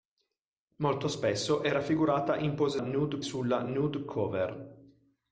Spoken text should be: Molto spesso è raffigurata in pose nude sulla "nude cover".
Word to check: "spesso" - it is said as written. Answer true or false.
true